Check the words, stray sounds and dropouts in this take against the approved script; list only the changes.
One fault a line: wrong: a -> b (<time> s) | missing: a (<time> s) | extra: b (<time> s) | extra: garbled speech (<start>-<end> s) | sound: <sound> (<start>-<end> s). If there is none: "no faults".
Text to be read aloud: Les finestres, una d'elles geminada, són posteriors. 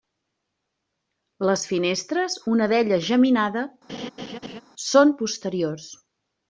sound: laugh (3.9-4.6 s)